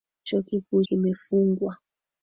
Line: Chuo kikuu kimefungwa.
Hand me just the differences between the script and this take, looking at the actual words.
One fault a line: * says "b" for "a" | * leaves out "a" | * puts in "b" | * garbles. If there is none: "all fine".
all fine